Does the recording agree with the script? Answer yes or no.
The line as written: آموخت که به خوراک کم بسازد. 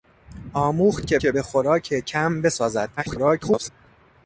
no